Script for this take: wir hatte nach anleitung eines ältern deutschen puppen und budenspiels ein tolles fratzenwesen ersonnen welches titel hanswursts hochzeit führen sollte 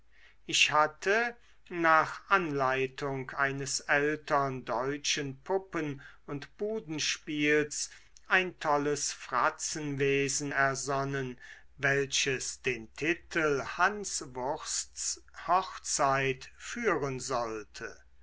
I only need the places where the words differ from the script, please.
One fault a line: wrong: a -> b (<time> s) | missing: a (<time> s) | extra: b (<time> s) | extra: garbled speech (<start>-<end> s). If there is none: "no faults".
wrong: wir -> ich (0.5 s)
extra: den (12.6 s)